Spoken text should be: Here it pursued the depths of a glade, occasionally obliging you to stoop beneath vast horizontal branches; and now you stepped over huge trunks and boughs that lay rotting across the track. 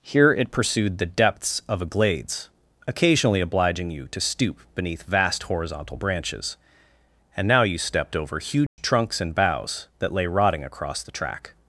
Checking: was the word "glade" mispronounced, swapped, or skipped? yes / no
yes